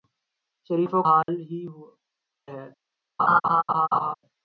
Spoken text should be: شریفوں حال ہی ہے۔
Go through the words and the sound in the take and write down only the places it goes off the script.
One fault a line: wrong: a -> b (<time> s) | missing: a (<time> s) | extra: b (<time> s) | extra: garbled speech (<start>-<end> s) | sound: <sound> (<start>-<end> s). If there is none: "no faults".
sound: dropout (1.2-1.3 s)
sound: laugh (3.2-4.1 s)